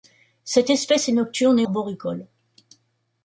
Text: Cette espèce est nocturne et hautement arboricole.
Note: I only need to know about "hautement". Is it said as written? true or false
false